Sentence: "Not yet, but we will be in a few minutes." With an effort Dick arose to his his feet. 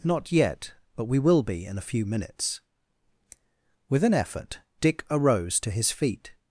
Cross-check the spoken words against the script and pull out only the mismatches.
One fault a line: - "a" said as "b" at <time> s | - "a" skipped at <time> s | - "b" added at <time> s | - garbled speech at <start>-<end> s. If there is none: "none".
- "his" skipped at 5.9 s